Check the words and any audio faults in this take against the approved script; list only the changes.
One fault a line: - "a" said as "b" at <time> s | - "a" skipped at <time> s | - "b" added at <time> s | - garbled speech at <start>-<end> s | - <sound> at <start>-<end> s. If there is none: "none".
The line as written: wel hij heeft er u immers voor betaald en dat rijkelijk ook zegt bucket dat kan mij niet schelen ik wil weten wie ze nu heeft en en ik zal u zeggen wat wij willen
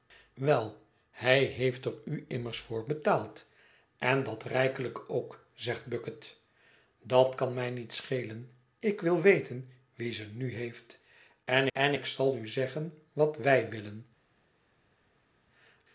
none